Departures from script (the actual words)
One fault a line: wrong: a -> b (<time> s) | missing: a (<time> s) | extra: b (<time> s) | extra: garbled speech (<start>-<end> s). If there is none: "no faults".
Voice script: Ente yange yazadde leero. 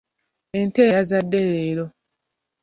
missing: yange (0.8 s)